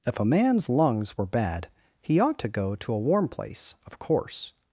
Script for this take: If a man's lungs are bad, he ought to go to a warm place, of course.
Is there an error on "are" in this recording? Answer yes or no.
yes